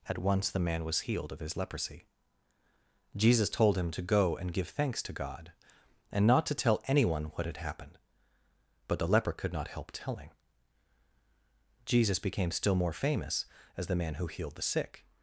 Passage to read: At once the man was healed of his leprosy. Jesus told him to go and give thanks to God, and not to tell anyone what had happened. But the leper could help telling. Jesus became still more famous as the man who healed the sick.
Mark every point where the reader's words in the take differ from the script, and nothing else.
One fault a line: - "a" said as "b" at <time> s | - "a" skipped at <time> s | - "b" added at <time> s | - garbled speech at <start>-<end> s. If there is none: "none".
- "not" added at 9.5 s